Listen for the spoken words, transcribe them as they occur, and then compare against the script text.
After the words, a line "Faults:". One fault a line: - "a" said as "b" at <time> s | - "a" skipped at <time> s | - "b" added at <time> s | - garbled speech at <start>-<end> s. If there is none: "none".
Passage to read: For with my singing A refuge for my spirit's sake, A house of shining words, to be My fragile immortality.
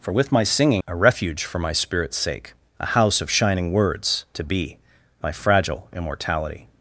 For with my singing A refuge for my spirit's sake, A house of shining words, to be My fragile immortality.
Faults:
none